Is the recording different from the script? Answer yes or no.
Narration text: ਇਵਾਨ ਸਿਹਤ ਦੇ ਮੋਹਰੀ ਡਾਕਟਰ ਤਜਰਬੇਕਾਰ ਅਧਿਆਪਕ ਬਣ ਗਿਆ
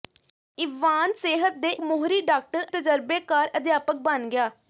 no